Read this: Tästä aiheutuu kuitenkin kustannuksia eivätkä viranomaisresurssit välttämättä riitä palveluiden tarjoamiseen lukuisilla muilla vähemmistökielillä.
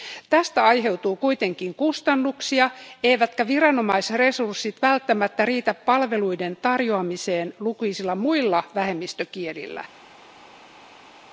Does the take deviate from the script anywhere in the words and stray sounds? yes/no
no